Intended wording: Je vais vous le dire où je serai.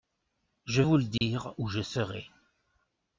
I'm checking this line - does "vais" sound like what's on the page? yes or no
no